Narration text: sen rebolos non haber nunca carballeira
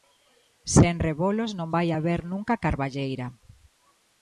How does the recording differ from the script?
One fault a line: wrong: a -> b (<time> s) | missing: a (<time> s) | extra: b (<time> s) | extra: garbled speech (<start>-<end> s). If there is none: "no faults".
extra: vai (1.7 s)